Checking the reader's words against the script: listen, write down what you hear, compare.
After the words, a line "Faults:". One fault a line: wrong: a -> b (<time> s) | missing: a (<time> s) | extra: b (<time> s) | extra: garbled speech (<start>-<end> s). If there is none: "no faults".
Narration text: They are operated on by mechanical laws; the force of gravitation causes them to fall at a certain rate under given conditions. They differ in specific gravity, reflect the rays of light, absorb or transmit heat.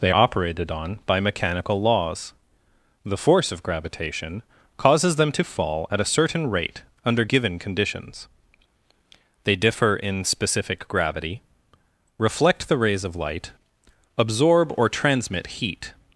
They operated on by mechanical laws; the force of gravitation causes them to fall at a certain rate under given conditions. They differ in specific gravity, reflect the rays of light, absorb or transmit heat.
Faults:
missing: are (0.1 s)